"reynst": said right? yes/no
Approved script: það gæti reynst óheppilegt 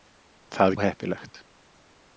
no